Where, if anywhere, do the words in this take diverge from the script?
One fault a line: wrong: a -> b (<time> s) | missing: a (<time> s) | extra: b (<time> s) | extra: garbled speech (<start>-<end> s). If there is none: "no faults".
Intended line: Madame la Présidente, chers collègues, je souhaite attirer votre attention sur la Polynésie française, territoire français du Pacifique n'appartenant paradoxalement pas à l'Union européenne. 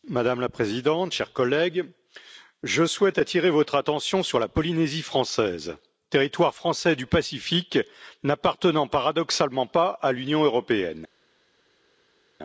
no faults